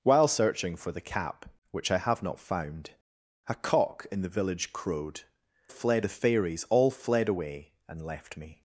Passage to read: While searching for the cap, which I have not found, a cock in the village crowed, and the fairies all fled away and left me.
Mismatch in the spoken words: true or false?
true